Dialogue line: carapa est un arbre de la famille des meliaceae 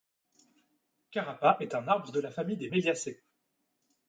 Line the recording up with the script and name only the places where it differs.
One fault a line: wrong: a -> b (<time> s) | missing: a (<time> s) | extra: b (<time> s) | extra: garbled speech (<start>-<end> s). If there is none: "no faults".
no faults